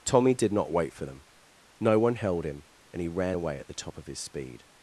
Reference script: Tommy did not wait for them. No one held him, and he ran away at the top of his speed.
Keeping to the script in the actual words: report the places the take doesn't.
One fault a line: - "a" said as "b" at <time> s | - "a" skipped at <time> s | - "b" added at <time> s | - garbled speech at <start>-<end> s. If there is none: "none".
none